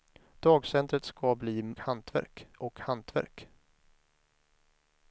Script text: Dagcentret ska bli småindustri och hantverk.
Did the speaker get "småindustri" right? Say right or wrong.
wrong